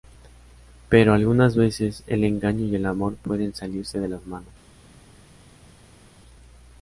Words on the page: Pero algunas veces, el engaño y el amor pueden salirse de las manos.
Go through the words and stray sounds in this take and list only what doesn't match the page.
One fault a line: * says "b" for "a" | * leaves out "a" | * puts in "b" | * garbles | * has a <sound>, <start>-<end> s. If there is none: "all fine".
all fine